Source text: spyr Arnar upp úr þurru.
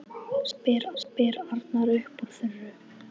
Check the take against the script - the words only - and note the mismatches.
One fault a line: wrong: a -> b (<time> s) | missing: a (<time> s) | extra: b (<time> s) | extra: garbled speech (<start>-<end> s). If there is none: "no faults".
extra: spyr (1.0 s)